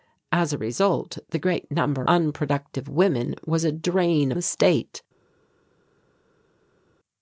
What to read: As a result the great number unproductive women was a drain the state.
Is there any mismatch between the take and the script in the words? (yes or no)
no